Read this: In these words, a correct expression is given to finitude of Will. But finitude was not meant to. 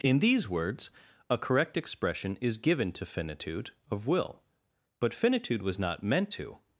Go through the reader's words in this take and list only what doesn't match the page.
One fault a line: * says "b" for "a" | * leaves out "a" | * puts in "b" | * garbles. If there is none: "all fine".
all fine